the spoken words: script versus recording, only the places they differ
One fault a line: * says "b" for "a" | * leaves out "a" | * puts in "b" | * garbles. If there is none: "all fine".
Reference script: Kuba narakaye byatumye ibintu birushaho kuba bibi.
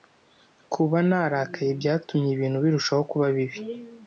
all fine